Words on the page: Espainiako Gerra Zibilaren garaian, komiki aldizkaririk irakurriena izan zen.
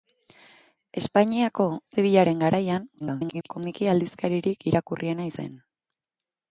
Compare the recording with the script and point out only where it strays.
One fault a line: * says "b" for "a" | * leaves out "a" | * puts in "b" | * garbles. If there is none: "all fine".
* leaves out "Gerra"
* garbles
* leaves out "izan"